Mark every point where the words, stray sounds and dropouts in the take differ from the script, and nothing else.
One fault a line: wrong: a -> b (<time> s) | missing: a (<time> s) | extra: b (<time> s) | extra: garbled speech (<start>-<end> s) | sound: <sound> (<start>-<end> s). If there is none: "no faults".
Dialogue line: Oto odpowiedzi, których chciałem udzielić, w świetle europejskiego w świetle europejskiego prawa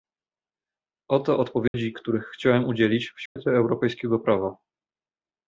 sound: dropout (1.7-1.7 s)
sound: dropout (3.3-3.4 s)
missing: w świetle europejskiego (4.2 s)